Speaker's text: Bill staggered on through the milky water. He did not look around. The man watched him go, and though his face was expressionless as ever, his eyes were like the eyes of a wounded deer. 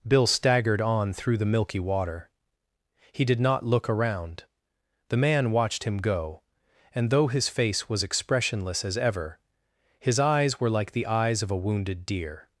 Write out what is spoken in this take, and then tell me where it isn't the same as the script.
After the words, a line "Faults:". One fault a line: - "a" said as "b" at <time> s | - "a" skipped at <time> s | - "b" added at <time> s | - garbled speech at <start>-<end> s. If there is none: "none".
Bill staggered on through the milky water. He did not look around. The man watched him go, and though his face was expressionless as ever, his eyes were like the eyes of a wounded deer.
Faults:
none